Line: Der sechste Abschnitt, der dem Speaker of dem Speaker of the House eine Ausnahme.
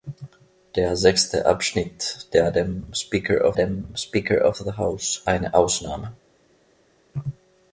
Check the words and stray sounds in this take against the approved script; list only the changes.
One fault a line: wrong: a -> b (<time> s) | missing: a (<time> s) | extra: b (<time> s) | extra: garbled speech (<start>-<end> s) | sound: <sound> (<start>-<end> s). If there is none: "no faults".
no faults